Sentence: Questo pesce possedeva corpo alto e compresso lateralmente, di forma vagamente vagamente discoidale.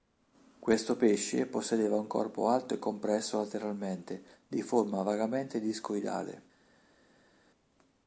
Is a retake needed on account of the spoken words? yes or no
yes